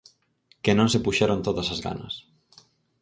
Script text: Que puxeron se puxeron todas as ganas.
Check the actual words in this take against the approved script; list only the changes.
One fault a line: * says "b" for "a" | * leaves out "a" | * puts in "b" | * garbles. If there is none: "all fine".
* says "non" for "puxeron"